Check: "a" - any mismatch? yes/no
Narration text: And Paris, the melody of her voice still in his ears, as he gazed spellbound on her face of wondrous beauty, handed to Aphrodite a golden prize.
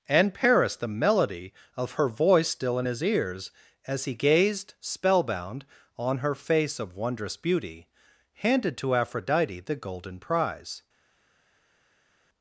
yes